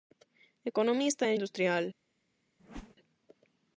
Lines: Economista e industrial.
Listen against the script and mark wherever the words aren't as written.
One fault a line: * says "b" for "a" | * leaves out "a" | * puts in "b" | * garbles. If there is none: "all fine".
all fine